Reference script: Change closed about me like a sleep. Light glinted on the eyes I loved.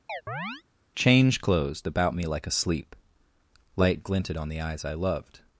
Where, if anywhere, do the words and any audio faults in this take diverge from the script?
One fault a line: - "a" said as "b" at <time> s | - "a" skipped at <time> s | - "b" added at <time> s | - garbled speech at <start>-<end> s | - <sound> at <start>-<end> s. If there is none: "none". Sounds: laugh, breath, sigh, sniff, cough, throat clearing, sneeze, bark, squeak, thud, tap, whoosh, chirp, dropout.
- chirp at 0.1-0.6 s